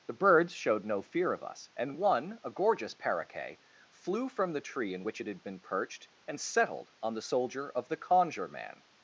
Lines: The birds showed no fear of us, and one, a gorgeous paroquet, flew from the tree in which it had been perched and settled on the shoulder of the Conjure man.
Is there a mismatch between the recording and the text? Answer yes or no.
yes